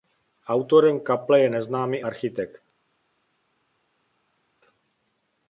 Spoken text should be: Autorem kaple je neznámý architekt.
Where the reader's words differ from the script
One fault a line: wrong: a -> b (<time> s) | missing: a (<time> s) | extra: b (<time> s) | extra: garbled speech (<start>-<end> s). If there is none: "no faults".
no faults